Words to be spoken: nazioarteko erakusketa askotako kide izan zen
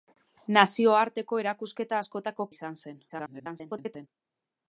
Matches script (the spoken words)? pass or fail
fail